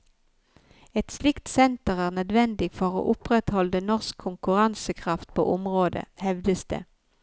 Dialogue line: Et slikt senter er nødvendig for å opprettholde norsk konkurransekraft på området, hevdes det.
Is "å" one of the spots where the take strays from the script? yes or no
no